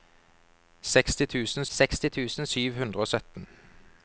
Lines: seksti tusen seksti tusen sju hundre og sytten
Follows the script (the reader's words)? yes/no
yes